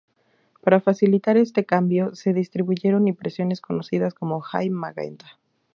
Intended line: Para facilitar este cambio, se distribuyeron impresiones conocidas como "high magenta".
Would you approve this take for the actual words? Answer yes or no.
yes